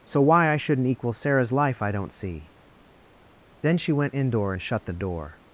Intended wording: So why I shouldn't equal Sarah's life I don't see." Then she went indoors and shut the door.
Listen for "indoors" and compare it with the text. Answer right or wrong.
wrong